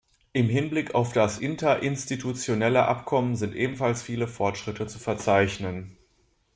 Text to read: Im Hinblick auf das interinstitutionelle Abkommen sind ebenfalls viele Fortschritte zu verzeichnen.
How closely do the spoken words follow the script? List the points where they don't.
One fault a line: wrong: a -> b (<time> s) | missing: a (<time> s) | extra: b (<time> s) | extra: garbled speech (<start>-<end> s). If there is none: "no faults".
no faults